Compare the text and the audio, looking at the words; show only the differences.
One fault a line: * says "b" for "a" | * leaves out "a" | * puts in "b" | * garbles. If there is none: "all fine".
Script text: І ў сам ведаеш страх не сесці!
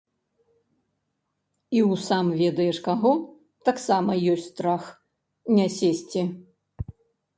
* puts in "каго таксама ёсць"